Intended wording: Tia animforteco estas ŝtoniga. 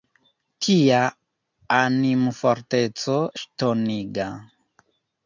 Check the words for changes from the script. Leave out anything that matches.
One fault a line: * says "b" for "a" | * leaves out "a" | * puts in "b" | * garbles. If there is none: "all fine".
* leaves out "estas"